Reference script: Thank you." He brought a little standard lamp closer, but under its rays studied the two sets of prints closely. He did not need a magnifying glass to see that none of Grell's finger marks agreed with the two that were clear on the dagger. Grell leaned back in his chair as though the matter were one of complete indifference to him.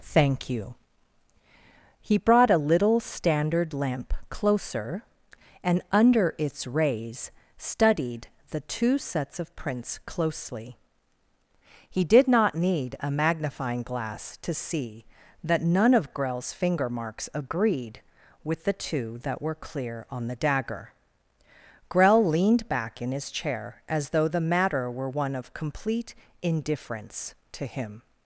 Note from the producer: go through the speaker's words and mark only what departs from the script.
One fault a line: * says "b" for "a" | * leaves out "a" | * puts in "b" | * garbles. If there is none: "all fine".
* says "and" for "but"